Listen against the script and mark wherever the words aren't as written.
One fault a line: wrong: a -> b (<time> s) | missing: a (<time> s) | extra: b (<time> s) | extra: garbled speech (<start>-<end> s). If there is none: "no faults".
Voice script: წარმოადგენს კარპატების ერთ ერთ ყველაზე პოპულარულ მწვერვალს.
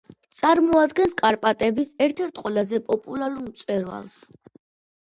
no faults